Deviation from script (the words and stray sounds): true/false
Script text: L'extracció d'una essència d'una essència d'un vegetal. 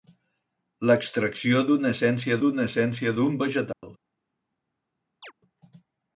true